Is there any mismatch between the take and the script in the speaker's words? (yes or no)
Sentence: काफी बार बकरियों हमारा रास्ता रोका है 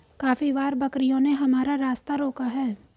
yes